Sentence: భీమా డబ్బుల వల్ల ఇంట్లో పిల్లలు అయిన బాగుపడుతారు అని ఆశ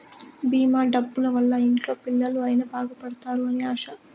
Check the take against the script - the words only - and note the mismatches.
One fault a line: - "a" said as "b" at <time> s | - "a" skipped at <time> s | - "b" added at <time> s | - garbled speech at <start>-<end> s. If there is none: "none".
none